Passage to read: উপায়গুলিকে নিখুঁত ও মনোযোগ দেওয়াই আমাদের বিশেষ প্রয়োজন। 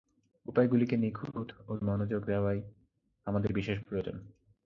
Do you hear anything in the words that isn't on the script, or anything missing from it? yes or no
no